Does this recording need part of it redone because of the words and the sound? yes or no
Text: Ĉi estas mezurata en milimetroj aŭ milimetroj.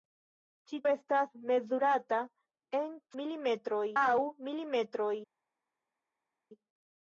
no